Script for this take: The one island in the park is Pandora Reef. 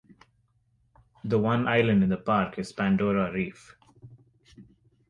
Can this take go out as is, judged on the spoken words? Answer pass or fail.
pass